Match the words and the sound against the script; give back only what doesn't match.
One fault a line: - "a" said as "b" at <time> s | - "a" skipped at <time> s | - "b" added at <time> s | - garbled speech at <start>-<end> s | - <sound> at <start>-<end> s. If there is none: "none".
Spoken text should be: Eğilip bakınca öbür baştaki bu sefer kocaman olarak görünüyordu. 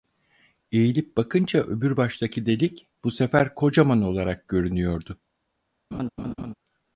- "delik" added at 2.5 s
- laugh at 5.9-6.5 s